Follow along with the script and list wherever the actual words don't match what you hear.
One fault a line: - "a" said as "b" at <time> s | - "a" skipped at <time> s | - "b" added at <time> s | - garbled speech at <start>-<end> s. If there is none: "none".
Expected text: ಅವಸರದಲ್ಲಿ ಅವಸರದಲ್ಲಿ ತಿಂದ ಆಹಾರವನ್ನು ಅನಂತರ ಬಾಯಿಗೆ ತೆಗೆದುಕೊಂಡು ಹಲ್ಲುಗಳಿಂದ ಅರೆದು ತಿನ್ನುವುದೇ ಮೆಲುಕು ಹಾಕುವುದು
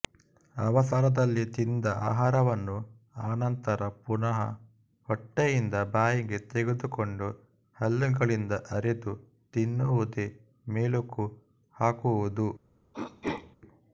- "ಅವಸರದಲ್ಲಿ" skipped at 1.4 s
- "ಪುನಃ ಹೊಟ್ಟೆಯಿಂದ" added at 4.0 s